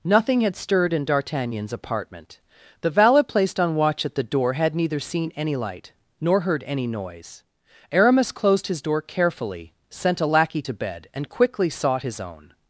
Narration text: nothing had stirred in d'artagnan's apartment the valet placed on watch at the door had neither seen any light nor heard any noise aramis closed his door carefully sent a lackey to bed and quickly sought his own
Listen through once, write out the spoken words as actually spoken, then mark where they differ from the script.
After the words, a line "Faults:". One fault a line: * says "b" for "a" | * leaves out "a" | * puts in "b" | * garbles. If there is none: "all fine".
nothing had stirred in d'artagnan's apartment the valet placed on watch at the door had neither seen any light nor heard any noise aramis closed his door carefully sent a lackey to bed and quickly sought his own
Faults:
all fine